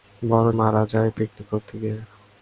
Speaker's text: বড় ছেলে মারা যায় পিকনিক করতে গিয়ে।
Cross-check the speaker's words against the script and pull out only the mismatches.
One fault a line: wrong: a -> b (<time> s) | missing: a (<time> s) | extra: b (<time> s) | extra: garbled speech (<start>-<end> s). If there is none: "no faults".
missing: ছেলে (0.5 s)